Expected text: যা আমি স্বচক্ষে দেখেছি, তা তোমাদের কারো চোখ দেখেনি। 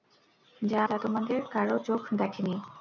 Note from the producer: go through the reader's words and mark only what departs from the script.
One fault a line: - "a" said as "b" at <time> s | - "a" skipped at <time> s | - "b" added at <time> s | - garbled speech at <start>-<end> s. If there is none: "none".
- "আমি স্বচক্ষে দেখেছি" skipped at 0.8 s